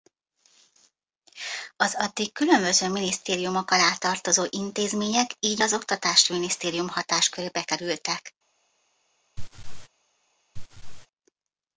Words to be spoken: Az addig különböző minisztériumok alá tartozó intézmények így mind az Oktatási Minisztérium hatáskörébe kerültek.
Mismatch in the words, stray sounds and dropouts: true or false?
true